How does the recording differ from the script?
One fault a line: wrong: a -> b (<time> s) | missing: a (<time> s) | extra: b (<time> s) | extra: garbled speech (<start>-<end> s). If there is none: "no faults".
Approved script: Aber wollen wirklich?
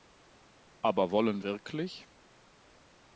no faults